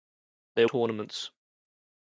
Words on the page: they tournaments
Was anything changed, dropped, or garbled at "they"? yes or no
no